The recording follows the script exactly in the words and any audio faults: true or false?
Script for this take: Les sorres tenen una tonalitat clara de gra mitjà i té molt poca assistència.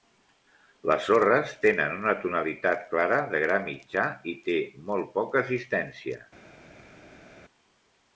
true